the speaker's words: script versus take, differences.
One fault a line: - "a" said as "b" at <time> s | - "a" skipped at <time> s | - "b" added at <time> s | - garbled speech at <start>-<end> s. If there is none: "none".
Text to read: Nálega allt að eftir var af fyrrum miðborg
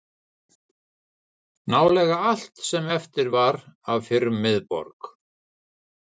- "að" said as "sem" at 2.7 s